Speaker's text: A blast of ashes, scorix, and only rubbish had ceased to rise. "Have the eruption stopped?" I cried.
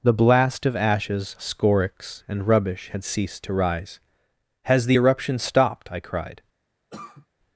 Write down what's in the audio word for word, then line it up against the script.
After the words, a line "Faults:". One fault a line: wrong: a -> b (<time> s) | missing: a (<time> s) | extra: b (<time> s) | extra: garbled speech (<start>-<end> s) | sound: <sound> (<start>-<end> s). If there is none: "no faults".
The blast of ashes, scorix, and rubbish had ceased to rise. "Has the eruption stopped?" I cried.
Faults:
wrong: A -> The (0.0 s)
missing: only (2.5 s)
wrong: Have -> Has (4.6 s)
sound: cough (6.9-7.3 s)